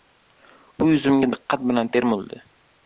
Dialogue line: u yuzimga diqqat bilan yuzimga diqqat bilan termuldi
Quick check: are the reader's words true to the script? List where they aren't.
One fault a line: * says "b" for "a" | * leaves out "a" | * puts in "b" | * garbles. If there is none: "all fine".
* leaves out "yuzimga diqqat bilan"